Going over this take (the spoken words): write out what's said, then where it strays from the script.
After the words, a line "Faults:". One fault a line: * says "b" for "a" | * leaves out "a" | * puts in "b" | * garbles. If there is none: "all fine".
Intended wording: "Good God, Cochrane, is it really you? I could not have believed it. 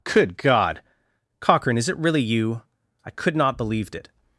"Good God, Cochrane, is it really you? I could not believed it.
Faults:
* leaves out "have"